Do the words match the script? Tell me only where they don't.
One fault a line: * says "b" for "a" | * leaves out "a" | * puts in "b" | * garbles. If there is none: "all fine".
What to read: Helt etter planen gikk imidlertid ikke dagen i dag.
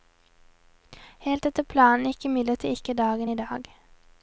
all fine